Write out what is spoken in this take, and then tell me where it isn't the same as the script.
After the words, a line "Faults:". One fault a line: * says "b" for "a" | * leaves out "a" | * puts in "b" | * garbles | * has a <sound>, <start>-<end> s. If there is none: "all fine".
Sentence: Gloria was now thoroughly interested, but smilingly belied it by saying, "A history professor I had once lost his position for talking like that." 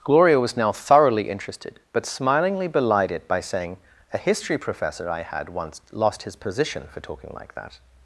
Gloria was now thoroughly interested, but smilingly belied it by saying, "A history professor I had once lost his position for talking like that."
Faults:
all fine